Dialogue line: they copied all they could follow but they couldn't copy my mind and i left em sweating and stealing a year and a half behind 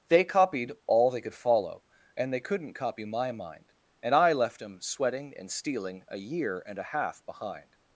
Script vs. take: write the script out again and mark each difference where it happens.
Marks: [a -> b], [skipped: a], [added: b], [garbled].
they copied all they could follow [but -> and] they couldn't copy my mind and i left em sweating and stealing a year and a half behind